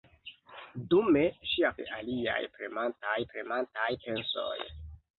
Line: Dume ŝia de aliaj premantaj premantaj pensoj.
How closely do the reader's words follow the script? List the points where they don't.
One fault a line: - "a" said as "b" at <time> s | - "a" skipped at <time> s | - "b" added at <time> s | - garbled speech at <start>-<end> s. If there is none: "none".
none